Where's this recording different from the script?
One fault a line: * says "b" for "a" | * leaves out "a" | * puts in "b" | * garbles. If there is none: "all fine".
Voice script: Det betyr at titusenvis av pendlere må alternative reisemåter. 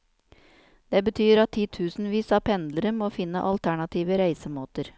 * puts in "finne"